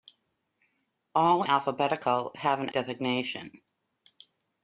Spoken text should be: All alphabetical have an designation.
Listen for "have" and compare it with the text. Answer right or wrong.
right